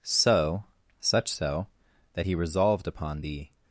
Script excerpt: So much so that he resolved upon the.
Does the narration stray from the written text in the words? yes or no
yes